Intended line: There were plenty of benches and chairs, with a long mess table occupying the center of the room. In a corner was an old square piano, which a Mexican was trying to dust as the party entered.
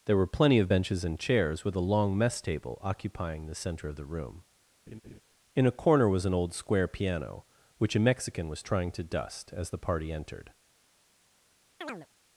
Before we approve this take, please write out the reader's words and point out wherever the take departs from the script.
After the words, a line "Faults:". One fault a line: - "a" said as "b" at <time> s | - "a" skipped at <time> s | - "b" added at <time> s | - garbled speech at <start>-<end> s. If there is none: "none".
There were plenty of benches and chairs, with a long mess table occupying the center of the room. In a corner was an old square piano, which a Mexican was trying to dust as the party entered.
Faults:
none